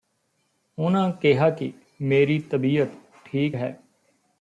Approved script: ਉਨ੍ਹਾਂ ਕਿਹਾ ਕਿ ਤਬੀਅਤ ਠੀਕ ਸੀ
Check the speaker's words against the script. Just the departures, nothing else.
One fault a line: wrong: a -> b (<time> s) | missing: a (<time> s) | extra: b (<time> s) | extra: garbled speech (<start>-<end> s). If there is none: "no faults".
extra: ਮੇਰੀ (2.0 s)
wrong: ਸੀ -> ਹੈ (3.5 s)